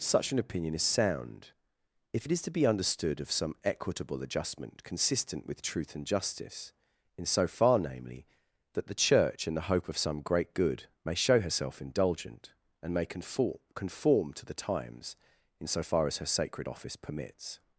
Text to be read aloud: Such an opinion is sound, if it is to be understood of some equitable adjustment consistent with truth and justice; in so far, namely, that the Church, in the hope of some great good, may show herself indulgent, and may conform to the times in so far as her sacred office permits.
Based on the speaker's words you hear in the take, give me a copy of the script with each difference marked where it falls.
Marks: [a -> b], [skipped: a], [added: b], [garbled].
Such an opinion is sound, if it is to be understood of some equitable adjustment consistent with truth and justice; in so far, namely, that the Church, in the hope of some great good, may show herself indulgent, and may conform [added: conform] to the times in so far as her sacred office permits.